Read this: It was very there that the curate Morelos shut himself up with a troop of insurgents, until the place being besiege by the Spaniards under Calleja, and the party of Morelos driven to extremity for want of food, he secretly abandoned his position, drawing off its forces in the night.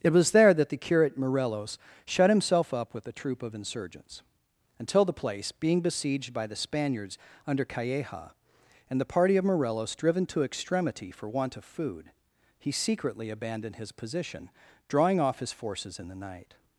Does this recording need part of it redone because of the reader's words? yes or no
yes